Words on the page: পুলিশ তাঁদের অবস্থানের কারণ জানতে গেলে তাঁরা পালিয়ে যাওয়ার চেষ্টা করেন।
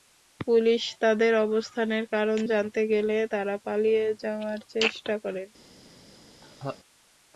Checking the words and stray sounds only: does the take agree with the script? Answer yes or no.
no